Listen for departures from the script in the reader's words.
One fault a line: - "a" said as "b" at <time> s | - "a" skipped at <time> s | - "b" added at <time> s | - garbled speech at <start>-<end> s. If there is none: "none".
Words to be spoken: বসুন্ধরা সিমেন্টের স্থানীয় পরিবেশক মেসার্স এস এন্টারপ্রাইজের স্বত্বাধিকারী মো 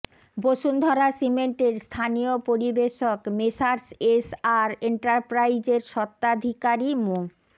- "আর" added at 4.6 s